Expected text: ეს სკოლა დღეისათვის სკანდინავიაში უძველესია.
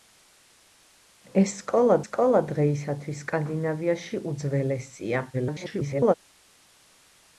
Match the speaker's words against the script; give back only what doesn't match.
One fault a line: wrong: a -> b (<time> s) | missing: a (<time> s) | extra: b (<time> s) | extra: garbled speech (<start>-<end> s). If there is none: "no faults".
extra: სკოლა (2.0 s)
extra: garbled speech (5.3-6.1 s)